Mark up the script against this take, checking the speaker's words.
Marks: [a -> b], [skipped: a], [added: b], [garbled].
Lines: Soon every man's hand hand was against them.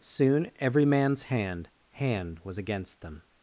Soon every man's hand hand was against them.